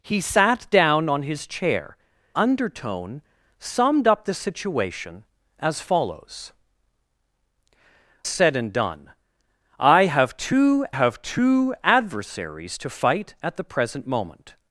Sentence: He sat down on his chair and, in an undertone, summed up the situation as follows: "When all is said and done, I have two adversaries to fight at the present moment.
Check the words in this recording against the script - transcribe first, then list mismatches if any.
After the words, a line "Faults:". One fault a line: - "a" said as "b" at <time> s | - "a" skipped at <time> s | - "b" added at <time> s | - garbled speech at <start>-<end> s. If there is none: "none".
He sat down on his chair undertone, summed up the situation as follows: "Said and done, I have two have two adversaries to fight at the present moment.
Faults:
- "and in an" skipped at 2.0 s
- "When all is" skipped at 6.5 s
- "have two" added at 10.9 s